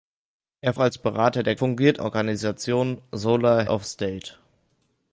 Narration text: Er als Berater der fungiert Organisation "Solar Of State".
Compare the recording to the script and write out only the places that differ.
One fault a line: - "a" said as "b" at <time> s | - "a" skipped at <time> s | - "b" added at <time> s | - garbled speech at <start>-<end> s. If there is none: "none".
none